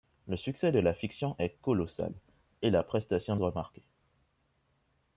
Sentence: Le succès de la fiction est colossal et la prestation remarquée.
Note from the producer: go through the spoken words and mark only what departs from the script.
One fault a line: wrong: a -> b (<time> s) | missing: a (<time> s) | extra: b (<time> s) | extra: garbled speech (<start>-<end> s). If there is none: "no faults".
no faults